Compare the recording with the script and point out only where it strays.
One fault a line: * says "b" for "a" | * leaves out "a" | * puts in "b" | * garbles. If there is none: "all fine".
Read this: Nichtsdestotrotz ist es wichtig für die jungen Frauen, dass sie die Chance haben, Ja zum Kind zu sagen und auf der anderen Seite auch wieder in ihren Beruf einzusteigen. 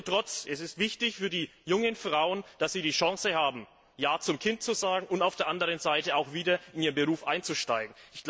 all fine